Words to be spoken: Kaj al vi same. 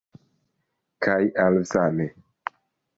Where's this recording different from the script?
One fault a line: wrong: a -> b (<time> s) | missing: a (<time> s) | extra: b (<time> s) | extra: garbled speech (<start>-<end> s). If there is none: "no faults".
missing: vi (1.6 s)